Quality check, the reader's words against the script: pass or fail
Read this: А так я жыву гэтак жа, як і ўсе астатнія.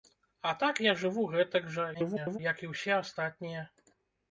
fail